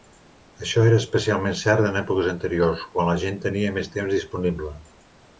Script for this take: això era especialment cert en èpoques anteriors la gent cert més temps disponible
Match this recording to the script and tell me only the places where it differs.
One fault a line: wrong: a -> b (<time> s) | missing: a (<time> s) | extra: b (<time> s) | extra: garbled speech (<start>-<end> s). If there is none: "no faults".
extra: quan (2.9 s)
wrong: cert -> tenia (3.4 s)